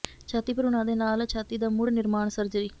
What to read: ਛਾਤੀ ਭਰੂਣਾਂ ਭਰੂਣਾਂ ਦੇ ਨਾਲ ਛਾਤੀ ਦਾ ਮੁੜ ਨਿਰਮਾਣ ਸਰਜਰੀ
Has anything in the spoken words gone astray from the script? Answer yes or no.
yes